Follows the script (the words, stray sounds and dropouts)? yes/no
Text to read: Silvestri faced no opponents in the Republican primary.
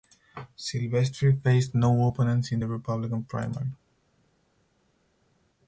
yes